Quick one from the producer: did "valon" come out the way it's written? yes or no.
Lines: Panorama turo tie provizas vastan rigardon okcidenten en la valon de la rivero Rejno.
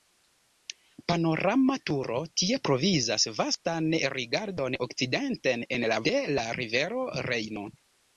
no